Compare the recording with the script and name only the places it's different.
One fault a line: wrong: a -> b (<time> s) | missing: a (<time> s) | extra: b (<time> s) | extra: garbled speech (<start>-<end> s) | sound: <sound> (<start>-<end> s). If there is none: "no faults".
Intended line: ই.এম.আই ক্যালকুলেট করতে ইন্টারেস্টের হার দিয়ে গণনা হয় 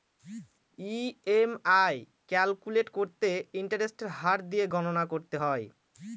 extra: করতে (5.1 s)